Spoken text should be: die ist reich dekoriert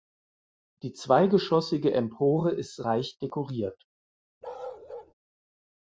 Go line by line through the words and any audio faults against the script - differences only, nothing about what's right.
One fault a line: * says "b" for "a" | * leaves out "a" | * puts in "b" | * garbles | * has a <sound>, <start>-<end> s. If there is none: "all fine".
* puts in "zweigeschossige empore"
* has a bark, 4.4-5.1 s